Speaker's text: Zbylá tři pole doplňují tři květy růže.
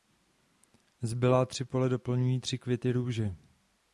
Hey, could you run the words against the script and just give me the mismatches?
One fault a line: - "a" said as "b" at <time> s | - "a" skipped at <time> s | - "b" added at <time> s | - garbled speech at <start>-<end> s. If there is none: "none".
none